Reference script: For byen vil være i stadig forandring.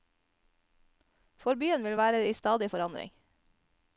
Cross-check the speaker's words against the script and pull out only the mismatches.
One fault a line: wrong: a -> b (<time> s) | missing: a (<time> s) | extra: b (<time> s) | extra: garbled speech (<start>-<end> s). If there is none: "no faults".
no faults